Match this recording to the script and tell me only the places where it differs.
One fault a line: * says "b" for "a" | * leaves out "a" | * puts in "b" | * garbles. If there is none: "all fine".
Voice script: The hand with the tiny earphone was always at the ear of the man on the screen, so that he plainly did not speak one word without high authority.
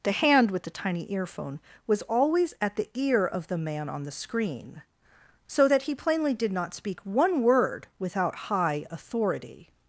all fine